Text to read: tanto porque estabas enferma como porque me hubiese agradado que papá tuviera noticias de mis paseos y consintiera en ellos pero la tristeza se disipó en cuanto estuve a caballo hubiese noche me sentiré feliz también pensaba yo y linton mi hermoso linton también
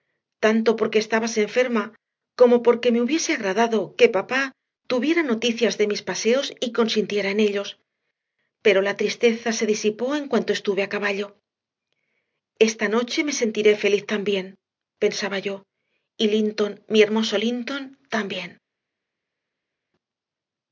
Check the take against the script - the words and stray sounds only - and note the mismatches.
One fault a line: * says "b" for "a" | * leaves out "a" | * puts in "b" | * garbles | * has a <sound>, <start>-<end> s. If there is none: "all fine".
* says "esta" for "hubiese"